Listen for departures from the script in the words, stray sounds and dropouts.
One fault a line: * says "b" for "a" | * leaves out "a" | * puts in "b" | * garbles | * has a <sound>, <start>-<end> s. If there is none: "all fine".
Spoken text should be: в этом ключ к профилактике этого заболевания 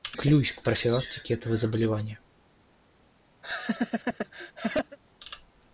* leaves out "этом"
* has a laugh, 3.4-5.0 s